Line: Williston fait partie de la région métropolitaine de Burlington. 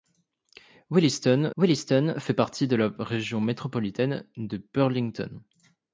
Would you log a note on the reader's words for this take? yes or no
yes